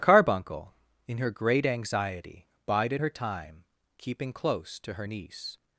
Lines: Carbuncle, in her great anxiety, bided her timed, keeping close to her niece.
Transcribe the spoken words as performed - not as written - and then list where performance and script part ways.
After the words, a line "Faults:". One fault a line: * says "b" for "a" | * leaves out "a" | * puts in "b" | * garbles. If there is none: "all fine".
Carbuncle, in her great anxiety, bided her time, keeping close to her niece.
Faults:
* says "time" for "timed"